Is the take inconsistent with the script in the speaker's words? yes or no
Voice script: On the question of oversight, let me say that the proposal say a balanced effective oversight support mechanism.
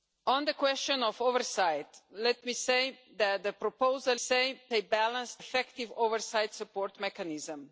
no